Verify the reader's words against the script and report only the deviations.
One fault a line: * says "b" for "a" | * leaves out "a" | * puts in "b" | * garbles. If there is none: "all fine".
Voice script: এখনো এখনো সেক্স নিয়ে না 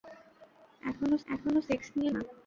all fine